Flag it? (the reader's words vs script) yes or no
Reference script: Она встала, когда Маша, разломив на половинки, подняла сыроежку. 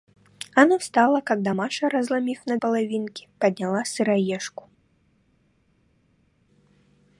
no